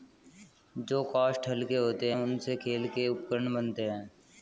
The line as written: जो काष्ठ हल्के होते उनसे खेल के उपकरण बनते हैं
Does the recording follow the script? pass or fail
pass